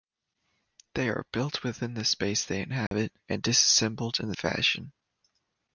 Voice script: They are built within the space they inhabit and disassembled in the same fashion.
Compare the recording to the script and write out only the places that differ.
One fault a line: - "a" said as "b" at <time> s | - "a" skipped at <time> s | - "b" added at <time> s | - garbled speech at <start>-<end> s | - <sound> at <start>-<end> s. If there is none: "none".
- dropout at 2.9-2.9 s
- "same" skipped at 4.3 s